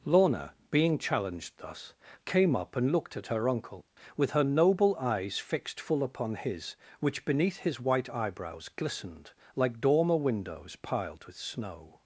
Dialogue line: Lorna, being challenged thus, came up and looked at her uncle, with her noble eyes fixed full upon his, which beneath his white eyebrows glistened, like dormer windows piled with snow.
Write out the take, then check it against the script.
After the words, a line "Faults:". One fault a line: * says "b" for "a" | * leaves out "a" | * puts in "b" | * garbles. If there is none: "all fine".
Lorna, being challenged thus, came up and looked at her uncle, with her noble eyes fixed full upon his, which beneath his white eyebrows glistened, like dormer windows piled with snow.
Faults:
all fine